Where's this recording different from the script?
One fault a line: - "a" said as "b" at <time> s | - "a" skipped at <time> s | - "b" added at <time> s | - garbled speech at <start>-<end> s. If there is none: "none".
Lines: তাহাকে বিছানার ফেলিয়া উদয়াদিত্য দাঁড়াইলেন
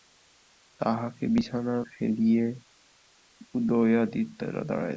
none